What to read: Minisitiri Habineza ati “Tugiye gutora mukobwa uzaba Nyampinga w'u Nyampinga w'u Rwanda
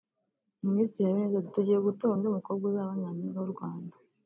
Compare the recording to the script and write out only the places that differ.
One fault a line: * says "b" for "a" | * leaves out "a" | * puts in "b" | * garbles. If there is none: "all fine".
* puts in "undi"
* leaves out "Nyampinga w'u"